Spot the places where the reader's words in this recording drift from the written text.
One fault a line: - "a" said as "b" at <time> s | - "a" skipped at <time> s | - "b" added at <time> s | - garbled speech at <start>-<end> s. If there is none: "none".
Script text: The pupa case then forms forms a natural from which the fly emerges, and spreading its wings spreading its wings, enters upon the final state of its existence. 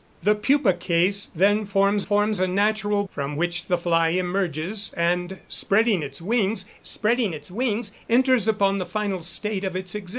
none